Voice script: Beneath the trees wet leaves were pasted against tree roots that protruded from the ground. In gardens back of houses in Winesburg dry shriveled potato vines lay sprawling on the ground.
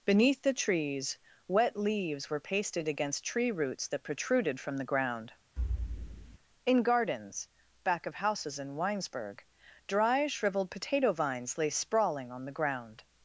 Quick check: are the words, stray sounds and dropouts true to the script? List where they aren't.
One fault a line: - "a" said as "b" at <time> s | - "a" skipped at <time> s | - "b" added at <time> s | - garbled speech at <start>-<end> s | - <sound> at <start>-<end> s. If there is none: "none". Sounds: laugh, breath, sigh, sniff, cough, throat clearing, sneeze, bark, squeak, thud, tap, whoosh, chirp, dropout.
- thud at 5.6-6.4 s